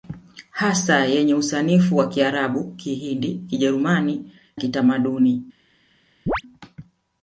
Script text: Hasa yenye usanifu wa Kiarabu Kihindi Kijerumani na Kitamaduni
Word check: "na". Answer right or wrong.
wrong